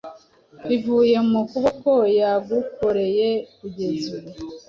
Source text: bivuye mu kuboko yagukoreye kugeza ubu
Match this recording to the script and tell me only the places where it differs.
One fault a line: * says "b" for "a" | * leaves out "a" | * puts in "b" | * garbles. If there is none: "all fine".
all fine